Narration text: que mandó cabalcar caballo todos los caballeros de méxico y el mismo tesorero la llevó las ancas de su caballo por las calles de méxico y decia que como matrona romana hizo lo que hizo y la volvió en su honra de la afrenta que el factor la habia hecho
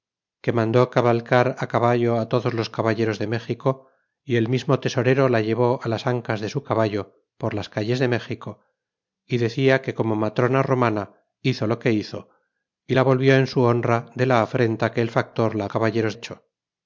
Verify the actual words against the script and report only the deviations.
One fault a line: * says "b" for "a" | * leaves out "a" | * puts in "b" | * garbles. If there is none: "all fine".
* says "caballeros" for "habia"